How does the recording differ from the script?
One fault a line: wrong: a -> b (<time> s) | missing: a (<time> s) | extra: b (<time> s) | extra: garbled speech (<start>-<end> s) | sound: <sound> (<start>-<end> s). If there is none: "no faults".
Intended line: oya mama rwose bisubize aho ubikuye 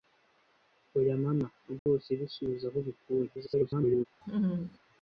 sound: dropout (1.8-1.9 s)
extra: garbled speech (3.3-4.1 s)
sound: laugh (4.2-4.8 s)